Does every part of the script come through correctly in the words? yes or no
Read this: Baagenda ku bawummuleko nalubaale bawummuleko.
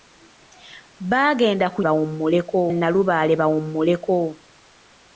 yes